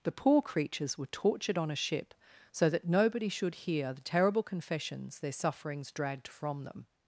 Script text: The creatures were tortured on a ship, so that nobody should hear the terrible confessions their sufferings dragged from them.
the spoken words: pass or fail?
fail